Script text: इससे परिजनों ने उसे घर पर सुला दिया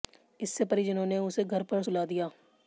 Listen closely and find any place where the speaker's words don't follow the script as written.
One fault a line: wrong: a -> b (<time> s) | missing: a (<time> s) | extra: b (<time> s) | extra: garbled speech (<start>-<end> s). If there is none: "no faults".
no faults